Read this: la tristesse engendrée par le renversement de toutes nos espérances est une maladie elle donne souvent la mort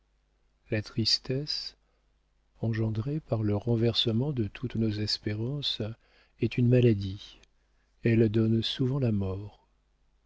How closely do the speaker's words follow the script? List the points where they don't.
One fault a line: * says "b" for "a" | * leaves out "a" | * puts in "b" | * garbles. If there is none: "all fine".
all fine